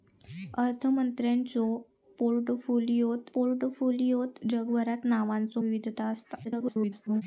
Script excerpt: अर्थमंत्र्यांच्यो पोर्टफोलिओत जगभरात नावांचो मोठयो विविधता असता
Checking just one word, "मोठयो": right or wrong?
wrong